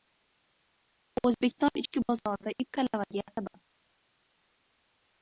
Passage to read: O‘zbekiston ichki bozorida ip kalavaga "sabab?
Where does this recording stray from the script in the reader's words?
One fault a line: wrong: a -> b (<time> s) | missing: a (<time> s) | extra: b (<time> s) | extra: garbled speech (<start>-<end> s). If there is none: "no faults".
no faults